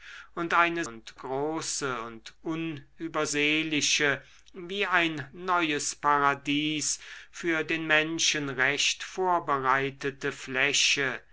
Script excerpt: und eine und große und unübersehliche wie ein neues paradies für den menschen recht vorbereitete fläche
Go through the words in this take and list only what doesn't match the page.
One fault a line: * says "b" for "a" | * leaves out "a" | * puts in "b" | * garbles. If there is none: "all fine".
all fine